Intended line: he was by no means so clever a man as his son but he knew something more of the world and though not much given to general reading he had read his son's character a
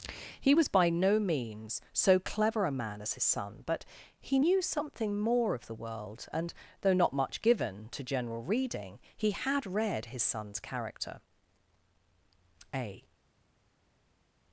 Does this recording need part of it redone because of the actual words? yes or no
no